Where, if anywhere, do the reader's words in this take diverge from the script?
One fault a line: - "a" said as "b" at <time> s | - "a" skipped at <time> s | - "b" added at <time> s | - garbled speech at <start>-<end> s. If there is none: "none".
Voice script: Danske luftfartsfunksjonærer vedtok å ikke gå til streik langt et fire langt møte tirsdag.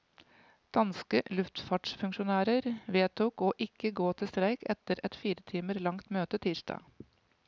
- "langt" said as "etter" at 4.8 s
- "timer" added at 5.5 s